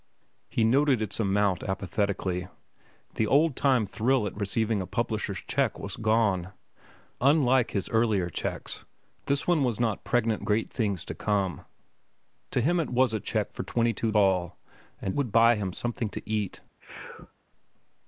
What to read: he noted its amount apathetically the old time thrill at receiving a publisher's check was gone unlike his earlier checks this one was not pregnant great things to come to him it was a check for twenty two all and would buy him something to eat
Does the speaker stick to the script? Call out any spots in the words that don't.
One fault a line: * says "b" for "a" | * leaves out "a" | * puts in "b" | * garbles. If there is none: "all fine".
all fine